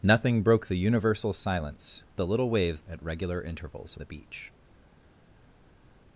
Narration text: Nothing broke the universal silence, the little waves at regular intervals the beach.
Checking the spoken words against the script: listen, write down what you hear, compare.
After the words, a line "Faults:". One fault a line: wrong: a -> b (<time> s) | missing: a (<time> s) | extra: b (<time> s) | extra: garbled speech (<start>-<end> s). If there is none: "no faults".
Nothing broke the universal silence, the little waves at regular intervals the beach.
Faults:
no faults